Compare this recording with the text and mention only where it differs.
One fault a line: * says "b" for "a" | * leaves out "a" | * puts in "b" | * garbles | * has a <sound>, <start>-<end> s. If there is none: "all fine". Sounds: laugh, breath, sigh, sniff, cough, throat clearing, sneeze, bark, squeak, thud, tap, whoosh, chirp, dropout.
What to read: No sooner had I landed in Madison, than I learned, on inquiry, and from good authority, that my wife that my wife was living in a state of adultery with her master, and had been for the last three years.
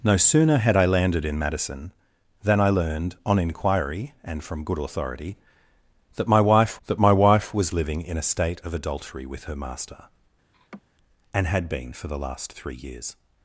* has a laugh, 10.5-10.8 s